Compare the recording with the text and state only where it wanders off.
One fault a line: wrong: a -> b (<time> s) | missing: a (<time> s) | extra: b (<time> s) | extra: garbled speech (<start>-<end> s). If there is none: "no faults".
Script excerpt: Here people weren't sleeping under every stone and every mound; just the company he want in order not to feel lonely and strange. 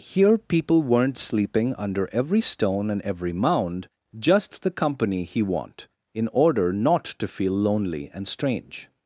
no faults